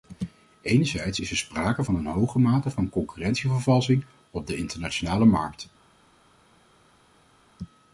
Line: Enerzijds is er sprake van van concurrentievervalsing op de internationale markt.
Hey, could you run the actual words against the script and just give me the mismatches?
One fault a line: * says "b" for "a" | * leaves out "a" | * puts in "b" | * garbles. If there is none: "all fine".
* puts in "een hoge mate"